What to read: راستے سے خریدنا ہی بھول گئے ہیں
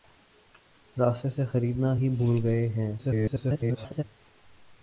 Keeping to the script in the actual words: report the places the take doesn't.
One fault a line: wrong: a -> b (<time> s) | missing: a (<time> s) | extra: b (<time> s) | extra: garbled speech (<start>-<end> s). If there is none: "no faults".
extra: garbled speech (3.0-4.0 s)